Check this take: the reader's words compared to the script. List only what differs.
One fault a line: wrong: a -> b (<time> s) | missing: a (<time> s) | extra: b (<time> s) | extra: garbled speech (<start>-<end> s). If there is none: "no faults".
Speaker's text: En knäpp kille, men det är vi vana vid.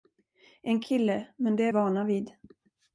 missing: knäpp (0.8 s)
missing: vi (1.7 s)